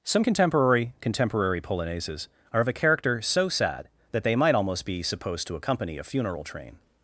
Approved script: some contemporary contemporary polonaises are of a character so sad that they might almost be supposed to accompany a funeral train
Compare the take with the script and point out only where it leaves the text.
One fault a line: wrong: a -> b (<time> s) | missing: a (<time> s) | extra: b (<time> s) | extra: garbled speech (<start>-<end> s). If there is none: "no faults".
no faults